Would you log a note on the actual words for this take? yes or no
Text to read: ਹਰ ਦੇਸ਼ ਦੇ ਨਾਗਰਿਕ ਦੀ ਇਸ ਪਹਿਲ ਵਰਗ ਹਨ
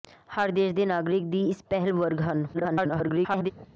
yes